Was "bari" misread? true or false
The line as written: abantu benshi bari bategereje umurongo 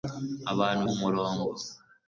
true